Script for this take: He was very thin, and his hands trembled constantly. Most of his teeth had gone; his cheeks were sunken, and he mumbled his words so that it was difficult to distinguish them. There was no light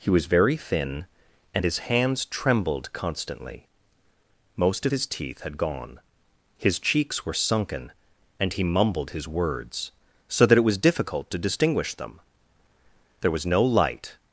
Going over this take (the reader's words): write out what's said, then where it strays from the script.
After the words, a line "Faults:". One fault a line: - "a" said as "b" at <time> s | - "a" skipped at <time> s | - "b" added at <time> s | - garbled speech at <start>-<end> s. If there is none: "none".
He was very thin, and his hands trembled constantly. Most of his teeth had gone; his cheeks were sunken, and he mumbled his words so that it was difficult to distinguish them. There was no light
Faults:
none